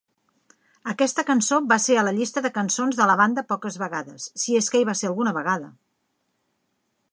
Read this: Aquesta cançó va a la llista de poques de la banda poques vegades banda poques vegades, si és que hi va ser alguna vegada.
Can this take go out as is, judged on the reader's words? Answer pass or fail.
fail